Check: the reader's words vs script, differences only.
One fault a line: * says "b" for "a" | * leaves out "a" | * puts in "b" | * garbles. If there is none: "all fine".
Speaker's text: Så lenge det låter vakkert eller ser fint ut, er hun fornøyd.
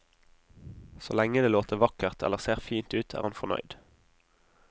* says "han" for "hun"